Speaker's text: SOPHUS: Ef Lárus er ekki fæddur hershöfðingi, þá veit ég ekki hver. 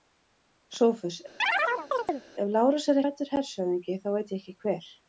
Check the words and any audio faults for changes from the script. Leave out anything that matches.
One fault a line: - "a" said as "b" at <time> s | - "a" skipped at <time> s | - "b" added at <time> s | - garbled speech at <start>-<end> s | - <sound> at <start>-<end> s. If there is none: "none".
- chirp at 1.4-2.2 s
- "ekki" skipped at 3.0 s